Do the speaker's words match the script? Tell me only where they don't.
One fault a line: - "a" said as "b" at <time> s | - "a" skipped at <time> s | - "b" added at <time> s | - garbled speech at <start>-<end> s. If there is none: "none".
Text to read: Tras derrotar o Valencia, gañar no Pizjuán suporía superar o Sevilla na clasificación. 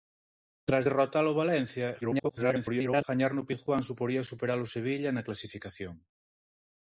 - garbled speech at 2.0-3.0 s